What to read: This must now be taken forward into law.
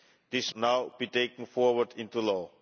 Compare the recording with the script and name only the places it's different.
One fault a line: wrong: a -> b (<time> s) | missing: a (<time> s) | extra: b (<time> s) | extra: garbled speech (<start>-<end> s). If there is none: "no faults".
missing: must (0.5 s)